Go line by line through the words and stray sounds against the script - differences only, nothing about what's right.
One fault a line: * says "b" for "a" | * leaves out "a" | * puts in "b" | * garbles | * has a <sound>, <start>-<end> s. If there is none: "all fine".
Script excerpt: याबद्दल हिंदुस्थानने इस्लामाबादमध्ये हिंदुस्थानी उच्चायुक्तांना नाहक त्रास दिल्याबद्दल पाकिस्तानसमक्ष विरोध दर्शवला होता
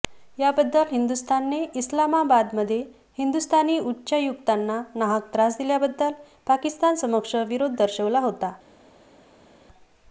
all fine